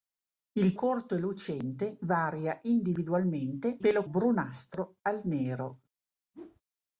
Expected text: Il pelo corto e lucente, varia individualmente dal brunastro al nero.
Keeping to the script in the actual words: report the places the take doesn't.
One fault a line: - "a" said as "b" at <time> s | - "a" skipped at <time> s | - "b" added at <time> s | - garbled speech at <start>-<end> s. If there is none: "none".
- "pelo" skipped at 0.8 s
- "dal" said as "pelo" at 3.8 s